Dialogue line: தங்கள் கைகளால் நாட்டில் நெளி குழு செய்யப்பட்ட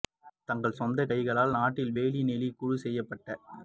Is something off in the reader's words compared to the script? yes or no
yes